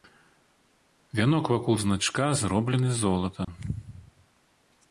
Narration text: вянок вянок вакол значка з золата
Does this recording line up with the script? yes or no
no